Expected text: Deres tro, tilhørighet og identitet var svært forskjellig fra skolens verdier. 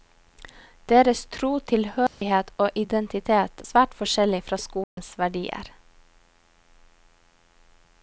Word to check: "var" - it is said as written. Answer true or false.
false